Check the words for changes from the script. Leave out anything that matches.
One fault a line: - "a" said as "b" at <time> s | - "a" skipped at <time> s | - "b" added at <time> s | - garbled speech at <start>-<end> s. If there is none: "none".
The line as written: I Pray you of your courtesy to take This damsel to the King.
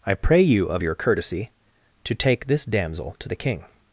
none